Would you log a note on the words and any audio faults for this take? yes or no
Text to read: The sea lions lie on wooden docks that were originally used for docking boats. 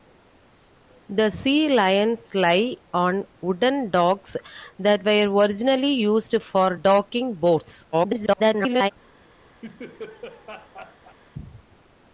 yes